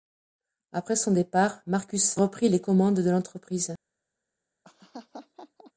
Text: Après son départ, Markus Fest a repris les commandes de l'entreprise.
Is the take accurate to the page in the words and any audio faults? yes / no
no